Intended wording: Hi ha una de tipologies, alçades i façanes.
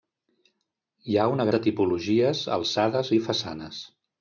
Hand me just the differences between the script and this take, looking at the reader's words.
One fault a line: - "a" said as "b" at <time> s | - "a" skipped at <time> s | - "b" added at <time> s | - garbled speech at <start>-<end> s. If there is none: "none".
none